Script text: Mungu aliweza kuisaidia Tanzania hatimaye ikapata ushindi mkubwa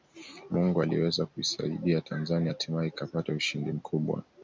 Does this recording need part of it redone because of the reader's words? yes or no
no